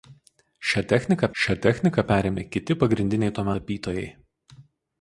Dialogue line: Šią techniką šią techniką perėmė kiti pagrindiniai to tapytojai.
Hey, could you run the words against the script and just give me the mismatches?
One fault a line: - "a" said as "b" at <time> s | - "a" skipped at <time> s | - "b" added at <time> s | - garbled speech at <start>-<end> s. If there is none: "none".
none